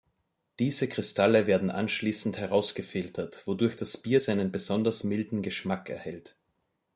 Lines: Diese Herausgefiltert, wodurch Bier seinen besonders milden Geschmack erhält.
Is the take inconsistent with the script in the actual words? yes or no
yes